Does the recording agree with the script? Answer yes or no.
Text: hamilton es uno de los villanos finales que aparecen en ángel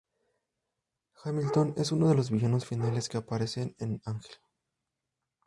yes